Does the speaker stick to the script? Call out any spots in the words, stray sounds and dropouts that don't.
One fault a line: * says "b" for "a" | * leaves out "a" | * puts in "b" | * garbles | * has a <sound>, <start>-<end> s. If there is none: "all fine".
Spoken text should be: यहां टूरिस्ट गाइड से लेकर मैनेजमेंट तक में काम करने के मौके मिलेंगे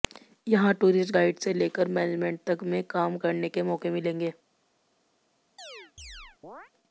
* has a chirp, 5.6-6.7 s